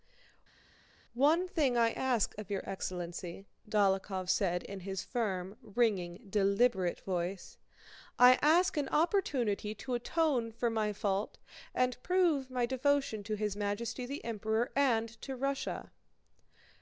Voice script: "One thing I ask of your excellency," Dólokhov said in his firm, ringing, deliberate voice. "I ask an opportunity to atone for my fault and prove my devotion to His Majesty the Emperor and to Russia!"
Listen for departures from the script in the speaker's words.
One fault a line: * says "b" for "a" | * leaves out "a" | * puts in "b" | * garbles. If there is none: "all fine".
all fine